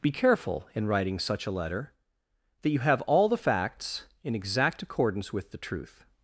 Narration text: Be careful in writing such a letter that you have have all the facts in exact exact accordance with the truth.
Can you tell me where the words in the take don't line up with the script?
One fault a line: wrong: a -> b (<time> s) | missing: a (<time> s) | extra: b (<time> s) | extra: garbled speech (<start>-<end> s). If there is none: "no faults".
missing: have (3.0 s)
missing: exact (4.8 s)